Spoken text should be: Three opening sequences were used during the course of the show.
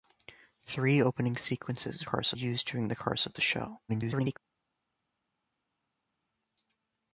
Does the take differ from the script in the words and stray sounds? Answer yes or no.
yes